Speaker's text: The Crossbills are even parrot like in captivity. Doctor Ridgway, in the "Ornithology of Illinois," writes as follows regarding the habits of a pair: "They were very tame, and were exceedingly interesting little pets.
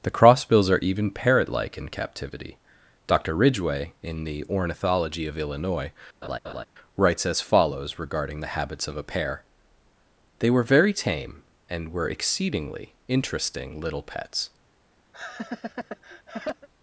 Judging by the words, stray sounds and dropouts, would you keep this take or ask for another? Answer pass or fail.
fail